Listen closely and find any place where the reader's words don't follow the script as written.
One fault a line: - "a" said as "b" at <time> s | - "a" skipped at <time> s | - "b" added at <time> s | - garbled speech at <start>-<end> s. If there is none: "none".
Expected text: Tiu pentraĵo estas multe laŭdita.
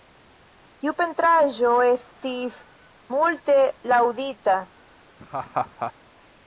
- "estas" said as "estis" at 1.9 s